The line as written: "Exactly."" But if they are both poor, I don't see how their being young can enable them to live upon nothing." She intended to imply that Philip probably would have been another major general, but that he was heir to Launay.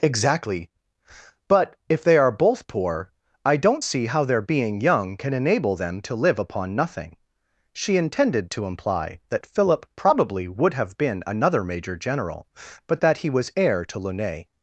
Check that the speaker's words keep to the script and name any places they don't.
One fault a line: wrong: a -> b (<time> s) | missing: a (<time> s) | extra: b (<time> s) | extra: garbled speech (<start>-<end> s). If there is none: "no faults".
no faults